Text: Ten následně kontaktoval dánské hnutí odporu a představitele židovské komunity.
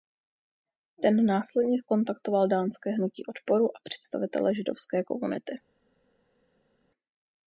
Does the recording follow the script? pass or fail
pass